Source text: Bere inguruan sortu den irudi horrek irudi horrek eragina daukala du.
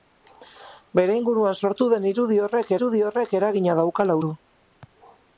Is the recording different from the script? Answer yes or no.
no